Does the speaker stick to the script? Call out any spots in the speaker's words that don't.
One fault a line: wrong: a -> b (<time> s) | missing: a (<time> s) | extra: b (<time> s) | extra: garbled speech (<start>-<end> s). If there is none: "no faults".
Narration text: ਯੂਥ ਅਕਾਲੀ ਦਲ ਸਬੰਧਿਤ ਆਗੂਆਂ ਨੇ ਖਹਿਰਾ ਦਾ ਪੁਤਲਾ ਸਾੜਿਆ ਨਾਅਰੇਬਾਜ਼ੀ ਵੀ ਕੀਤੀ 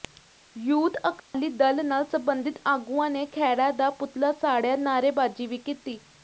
extra: ਨਾਲ (1.9 s)